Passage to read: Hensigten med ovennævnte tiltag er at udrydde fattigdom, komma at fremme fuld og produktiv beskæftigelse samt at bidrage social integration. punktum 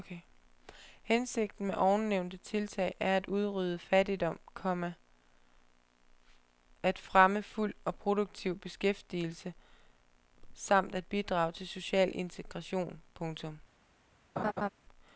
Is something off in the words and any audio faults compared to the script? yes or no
yes